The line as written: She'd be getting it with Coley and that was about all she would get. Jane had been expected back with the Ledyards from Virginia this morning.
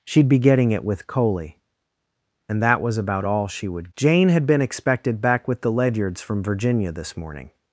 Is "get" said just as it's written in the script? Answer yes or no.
no